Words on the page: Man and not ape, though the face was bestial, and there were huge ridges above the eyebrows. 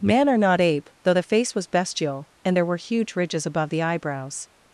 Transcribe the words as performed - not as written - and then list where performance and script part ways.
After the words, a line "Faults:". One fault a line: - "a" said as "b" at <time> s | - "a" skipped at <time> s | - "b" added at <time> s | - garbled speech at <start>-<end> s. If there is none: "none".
Man or not ape, though the face was bestial, and there were huge ridges above the eyebrows.
Faults:
- "and" said as "or" at 0.3 s